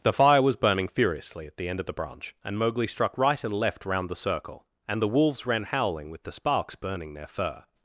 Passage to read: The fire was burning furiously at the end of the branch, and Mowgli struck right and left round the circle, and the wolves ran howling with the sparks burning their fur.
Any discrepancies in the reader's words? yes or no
no